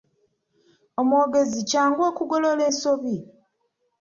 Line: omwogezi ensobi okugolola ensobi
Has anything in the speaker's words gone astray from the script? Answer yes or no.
yes